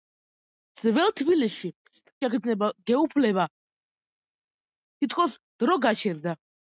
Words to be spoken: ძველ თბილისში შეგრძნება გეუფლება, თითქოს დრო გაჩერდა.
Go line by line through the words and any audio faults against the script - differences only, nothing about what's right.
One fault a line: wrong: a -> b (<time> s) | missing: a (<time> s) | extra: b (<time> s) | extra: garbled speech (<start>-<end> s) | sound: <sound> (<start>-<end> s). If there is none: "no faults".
no faults